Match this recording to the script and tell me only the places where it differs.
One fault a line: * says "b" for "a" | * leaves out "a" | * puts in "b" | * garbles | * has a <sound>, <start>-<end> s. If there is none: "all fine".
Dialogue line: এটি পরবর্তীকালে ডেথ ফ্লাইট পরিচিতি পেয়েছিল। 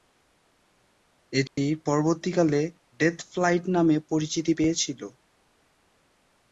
* has a dropout, 1.5-1.6 s
* puts in "নামে"